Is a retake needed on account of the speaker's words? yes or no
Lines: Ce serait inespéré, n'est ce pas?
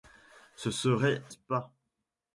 yes